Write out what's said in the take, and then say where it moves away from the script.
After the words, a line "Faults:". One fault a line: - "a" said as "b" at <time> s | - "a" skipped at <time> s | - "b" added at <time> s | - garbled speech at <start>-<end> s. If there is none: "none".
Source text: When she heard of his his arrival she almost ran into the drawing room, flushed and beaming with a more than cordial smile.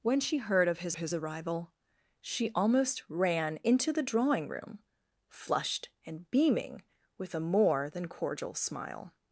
When she heard of his his arrival she almost ran into the drawing room, flushed and beaming with a more than cordial smile.
Faults:
none